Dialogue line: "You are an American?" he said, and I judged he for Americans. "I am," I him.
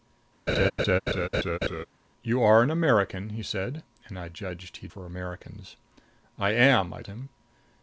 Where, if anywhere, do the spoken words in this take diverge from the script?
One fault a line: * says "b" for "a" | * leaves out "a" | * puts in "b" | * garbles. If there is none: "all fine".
all fine